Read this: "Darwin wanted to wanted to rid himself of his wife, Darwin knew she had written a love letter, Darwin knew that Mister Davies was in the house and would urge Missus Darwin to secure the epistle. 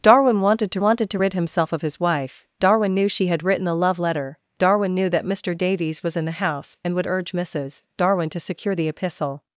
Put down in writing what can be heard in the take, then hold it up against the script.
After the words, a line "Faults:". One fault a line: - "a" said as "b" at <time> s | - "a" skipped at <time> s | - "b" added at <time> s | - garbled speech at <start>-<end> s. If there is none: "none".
"Darwin wanted to wanted to rid himself of his wife, Darwin knew she had written a love letter, Darwin knew that Mister Davies was in the house and would urge Missus Darwin to secure the epistle.
Faults:
none